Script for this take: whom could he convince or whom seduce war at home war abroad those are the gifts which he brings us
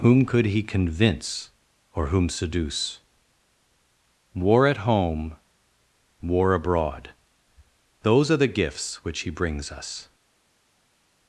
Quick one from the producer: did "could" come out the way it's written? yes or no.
yes